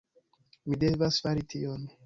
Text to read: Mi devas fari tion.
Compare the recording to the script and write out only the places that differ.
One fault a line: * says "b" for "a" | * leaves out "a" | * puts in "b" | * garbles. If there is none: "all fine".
all fine